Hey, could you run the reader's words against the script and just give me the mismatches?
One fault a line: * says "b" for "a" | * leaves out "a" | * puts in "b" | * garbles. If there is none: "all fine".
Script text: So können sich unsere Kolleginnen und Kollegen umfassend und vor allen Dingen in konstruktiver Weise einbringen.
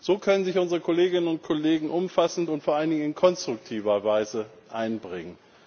all fine